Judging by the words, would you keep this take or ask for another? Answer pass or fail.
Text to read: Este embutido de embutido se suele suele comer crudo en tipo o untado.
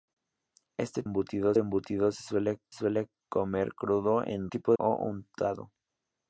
pass